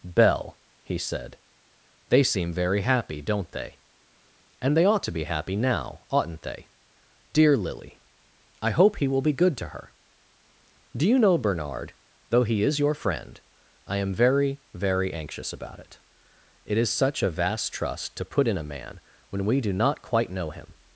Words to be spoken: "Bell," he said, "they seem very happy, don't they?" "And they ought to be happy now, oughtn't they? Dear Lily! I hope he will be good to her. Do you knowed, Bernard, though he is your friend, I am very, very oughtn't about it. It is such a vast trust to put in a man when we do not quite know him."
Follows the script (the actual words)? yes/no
no